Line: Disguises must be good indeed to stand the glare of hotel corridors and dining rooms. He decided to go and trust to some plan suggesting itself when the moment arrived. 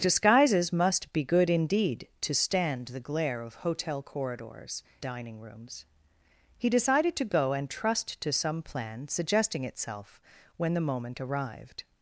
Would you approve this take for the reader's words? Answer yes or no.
no